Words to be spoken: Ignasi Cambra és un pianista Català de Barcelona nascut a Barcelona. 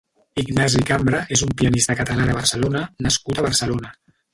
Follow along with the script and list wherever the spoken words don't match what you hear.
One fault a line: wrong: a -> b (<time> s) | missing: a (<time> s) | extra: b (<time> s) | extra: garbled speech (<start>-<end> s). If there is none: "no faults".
no faults